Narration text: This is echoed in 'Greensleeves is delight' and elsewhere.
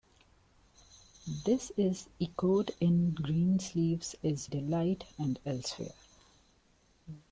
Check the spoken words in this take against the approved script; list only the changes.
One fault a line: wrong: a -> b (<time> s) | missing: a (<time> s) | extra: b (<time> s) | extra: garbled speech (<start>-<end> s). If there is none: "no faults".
no faults